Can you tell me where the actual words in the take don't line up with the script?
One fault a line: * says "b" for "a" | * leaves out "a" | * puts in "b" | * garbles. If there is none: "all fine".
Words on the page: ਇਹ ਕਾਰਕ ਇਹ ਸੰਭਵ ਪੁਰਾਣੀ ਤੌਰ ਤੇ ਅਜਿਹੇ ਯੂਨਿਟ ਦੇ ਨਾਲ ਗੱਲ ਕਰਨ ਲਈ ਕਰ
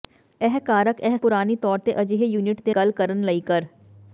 * leaves out "ਸੰਭਵ"
* leaves out "ਨਾਲ"